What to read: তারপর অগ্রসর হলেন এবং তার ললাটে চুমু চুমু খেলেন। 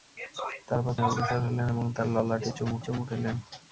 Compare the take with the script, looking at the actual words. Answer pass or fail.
pass